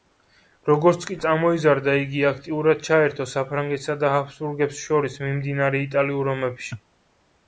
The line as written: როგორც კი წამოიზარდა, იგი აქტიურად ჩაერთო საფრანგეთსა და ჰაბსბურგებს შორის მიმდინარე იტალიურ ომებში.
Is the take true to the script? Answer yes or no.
yes